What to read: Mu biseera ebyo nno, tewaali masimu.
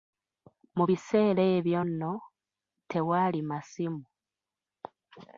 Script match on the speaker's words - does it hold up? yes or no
yes